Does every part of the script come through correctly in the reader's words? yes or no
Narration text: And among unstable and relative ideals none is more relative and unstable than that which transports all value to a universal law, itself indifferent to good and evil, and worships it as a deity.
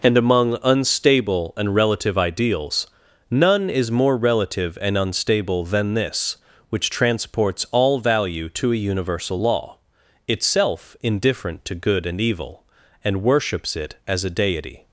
no